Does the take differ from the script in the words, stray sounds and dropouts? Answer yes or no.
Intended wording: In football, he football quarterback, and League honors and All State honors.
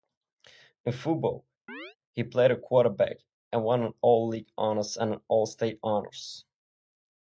yes